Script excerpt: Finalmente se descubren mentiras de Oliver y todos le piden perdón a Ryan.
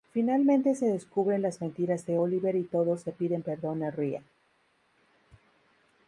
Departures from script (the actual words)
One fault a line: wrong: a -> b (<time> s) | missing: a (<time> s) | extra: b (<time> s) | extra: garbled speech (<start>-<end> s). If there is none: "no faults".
extra: las (1.4 s)